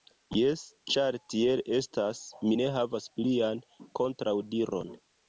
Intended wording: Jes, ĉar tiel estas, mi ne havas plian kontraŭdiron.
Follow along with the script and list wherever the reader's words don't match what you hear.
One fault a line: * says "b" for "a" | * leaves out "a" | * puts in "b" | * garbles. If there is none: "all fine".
all fine